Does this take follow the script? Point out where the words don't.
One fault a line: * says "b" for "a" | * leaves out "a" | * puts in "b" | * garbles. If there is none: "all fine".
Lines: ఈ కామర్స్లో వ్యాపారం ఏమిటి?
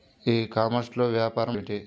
all fine